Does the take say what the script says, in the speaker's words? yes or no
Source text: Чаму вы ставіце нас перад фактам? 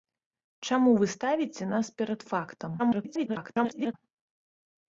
no